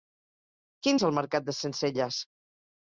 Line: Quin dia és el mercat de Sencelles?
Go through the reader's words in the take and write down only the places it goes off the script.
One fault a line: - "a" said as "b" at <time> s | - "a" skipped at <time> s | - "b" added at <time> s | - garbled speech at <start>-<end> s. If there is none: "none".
- "dia" skipped at 1.0 s